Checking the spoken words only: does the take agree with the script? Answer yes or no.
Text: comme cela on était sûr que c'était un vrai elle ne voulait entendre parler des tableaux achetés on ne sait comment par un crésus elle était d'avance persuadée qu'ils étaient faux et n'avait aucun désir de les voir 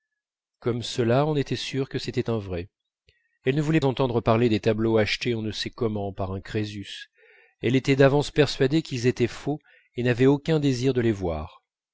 yes